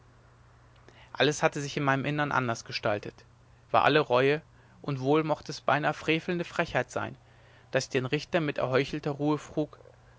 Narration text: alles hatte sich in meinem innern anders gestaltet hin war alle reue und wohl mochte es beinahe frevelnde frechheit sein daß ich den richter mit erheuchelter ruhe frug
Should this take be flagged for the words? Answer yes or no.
yes